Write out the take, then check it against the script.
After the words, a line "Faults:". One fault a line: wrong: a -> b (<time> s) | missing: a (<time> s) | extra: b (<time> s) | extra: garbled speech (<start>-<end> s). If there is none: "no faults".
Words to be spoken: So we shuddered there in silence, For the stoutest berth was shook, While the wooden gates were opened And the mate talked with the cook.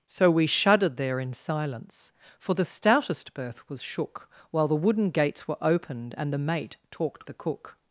So we shuddered there in silence, For the stoutest berth was shook, While the wooden gates were opened And the mate talked the cook.
Faults:
missing: with (7.3 s)